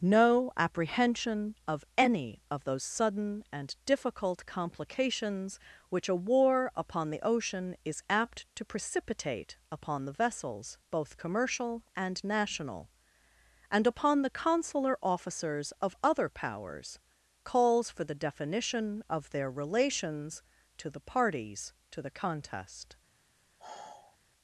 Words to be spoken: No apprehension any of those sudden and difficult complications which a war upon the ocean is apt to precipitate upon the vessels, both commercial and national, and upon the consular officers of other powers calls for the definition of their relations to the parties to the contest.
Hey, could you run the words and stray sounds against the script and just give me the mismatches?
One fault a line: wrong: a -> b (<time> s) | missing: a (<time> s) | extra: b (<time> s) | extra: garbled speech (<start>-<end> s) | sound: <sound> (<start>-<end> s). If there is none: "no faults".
extra: of (1.7 s)
sound: sigh (23.6-24.2 s)